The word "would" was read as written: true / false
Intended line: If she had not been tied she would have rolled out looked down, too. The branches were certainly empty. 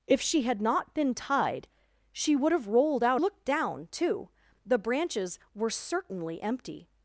true